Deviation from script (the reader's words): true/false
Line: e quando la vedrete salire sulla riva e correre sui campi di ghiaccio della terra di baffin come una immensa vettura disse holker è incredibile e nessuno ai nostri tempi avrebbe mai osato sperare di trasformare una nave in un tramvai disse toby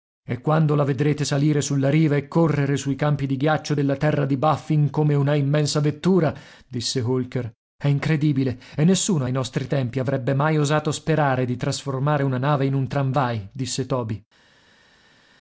false